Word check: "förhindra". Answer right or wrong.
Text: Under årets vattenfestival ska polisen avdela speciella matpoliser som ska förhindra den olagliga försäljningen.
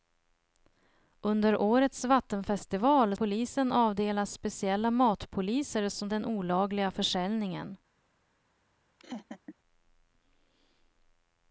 wrong